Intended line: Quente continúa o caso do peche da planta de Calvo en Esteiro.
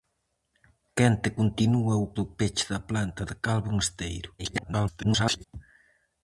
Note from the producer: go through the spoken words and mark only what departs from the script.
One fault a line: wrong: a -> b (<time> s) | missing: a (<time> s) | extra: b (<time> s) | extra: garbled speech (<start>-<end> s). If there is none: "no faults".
missing: caso (2.1 s)
extra: garbled speech (4.4-5.4 s)